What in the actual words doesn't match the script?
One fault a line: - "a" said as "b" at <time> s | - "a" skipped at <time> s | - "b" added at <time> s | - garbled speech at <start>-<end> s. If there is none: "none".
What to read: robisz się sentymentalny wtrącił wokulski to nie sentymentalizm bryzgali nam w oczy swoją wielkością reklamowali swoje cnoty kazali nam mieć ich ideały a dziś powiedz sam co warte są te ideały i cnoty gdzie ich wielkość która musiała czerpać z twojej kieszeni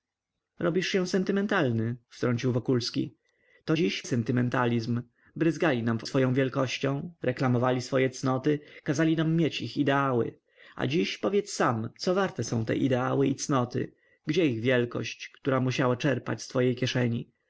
- "nie" said as "dziś" at 3.7 s
- "oczy" skipped at 6.0 s